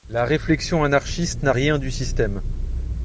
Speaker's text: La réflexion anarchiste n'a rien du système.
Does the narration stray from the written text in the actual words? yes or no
no